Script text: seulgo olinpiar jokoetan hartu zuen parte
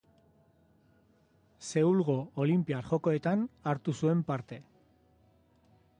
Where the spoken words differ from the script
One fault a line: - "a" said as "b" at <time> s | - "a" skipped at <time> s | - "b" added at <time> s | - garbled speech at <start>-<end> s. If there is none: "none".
none